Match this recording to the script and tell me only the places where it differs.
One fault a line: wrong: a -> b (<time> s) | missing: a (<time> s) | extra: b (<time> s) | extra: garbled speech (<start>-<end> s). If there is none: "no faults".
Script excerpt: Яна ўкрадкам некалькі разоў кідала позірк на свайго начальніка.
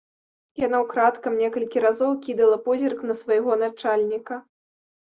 no faults